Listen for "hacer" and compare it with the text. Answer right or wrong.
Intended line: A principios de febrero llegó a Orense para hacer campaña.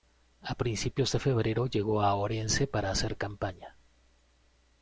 right